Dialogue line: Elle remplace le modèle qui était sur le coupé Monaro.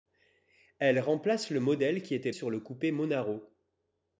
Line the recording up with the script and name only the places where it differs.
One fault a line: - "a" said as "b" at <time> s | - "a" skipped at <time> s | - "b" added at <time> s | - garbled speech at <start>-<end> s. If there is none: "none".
none